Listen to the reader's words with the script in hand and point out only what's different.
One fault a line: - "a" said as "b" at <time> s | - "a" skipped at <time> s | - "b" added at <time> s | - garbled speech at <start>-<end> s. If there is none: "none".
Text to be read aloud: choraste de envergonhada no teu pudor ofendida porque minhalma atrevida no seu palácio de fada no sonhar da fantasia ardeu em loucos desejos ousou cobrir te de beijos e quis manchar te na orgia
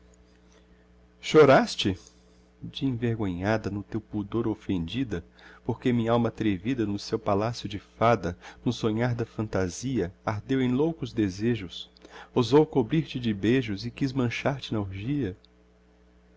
none